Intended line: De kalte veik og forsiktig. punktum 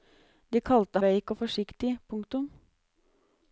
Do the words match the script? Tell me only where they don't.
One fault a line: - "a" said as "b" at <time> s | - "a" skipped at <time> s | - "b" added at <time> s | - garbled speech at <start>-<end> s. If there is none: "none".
none